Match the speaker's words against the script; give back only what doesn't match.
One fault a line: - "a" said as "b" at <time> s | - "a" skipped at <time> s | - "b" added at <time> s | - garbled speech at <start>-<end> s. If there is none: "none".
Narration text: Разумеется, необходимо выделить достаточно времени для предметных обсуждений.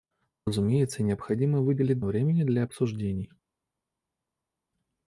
- "достаточно" skipped at 2.0 s
- "предметных" skipped at 2.6 s